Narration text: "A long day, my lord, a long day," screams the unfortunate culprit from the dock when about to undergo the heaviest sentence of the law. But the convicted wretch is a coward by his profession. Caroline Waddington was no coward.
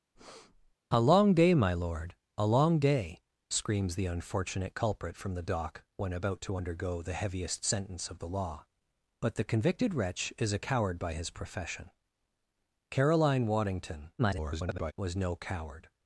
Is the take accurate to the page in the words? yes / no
no